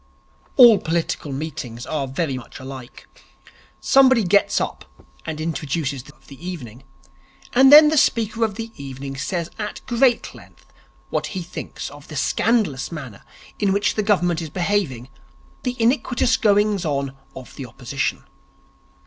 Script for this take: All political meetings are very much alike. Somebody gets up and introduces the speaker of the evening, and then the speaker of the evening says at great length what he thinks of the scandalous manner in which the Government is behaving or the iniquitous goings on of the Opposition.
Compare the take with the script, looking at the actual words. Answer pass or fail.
fail